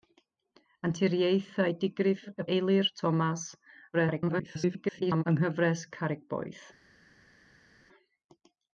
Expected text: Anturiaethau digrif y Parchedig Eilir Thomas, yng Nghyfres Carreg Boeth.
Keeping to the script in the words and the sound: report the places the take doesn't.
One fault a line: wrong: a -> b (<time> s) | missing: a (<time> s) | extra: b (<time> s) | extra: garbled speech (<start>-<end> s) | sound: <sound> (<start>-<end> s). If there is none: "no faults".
missing: Parchedig (2.5 s)
extra: garbled speech (3.9-5.2 s)